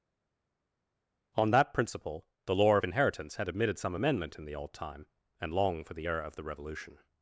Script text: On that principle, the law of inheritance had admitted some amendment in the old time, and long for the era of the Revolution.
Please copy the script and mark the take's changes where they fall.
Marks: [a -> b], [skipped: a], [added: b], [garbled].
On that principle, the law of inheritance had admitted some amendment in the old time, and long for the era of the Revolution.